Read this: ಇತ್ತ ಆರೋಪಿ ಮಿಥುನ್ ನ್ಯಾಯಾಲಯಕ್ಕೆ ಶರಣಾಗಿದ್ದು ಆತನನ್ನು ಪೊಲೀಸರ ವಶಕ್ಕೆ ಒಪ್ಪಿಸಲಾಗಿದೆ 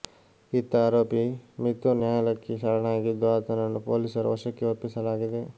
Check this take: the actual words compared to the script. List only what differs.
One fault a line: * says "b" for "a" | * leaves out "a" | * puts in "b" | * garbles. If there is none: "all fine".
all fine